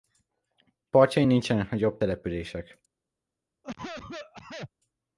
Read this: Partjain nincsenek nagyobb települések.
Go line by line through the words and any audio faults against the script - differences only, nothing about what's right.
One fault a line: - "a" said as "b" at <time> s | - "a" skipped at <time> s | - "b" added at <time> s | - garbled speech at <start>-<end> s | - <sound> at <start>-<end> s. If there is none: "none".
- cough at 3.6-4.7 s